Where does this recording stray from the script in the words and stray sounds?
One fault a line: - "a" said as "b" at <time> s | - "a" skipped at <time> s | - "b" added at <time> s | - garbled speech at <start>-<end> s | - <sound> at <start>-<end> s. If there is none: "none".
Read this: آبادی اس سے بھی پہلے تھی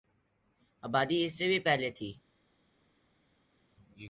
none